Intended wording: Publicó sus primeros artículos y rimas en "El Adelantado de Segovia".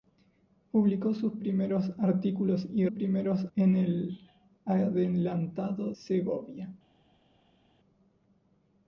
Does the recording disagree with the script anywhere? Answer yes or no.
yes